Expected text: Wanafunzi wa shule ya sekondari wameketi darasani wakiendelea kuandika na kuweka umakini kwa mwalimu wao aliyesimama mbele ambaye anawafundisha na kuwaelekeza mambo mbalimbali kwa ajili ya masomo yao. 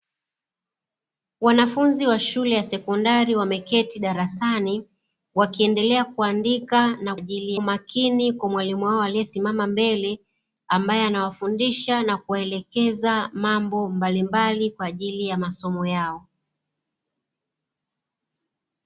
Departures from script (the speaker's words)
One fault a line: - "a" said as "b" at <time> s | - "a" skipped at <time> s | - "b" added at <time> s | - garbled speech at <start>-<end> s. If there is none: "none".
- "kuweka" said as "ajili" at 7.2 s